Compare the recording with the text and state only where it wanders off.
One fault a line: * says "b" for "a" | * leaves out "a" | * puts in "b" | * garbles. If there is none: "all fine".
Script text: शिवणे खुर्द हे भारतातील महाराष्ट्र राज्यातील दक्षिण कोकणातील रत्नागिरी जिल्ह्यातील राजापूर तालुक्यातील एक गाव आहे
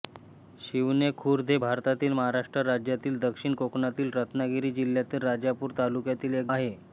* leaves out "गाव"